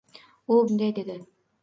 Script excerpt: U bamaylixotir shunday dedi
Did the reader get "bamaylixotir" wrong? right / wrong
wrong